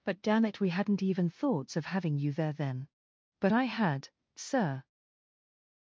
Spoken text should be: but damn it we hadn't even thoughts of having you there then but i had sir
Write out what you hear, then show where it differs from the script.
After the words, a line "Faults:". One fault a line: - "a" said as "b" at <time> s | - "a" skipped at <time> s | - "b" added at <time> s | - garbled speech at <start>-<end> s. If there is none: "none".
but damn it we hadn't even thoughts of having you there then but i had sir
Faults:
none